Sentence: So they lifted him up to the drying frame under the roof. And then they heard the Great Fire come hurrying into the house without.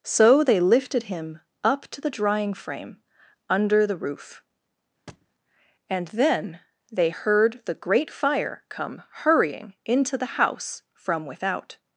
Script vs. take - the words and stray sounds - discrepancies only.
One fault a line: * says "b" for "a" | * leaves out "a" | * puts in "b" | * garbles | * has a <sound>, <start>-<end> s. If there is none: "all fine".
* has a thud, 5.1-5.3 s
* puts in "from"